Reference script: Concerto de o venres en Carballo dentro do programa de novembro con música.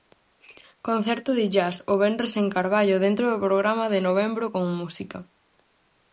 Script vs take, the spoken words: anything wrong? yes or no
yes